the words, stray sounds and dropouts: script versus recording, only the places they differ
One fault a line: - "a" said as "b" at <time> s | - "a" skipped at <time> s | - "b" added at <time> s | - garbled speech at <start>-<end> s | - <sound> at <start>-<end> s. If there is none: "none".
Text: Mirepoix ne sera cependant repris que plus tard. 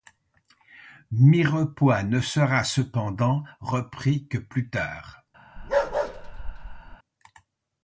- bark at 5.6-7.0 s